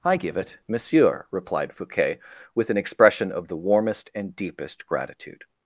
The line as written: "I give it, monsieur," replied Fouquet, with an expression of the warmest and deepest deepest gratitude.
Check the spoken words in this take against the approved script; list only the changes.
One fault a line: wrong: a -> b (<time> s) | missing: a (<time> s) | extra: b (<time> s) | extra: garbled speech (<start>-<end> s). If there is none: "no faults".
missing: deepest (4.8 s)